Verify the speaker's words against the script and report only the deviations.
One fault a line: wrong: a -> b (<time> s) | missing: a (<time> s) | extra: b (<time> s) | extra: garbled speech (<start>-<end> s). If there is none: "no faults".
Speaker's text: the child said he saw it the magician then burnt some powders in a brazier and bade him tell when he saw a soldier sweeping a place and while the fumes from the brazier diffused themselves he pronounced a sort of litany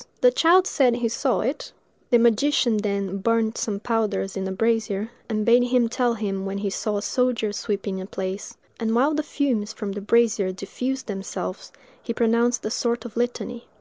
extra: him (6.2 s)